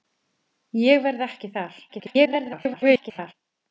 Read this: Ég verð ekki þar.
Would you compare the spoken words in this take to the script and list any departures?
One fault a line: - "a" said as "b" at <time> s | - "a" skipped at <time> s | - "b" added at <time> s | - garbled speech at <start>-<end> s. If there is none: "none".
- garbled speech at 1.9-3.3 s